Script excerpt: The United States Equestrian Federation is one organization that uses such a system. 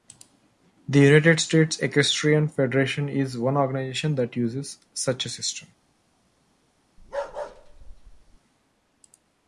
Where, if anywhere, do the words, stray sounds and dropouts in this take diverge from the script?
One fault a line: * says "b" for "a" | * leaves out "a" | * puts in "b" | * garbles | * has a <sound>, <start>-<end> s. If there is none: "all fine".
* has a bark, 7.0-8.4 s